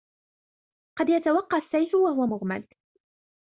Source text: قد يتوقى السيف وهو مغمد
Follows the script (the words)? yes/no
yes